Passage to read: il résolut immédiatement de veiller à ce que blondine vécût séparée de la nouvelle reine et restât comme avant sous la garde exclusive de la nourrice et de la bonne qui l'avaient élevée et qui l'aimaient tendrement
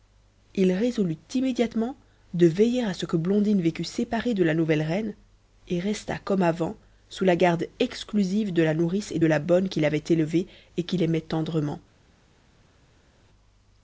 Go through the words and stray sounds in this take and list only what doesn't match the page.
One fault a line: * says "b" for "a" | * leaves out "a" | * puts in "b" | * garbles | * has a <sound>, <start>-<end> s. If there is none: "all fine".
all fine